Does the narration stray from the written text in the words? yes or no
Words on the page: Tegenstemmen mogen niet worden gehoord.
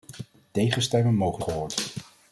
yes